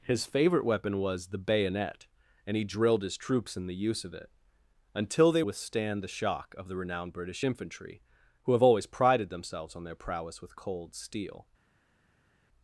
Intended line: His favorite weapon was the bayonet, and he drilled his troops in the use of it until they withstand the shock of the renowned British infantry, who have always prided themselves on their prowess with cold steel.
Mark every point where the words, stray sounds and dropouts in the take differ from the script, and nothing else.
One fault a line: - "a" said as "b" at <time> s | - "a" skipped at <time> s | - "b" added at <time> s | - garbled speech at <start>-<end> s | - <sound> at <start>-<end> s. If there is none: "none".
none